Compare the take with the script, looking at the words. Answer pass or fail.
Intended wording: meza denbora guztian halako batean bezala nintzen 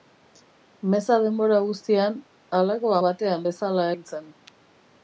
pass